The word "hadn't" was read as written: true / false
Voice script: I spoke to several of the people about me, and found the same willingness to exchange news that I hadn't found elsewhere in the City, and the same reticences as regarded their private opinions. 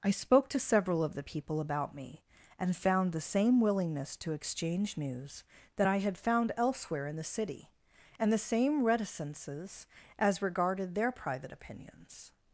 false